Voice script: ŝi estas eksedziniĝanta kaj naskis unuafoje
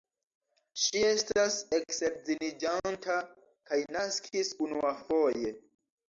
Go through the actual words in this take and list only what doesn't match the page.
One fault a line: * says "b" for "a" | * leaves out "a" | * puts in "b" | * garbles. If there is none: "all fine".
all fine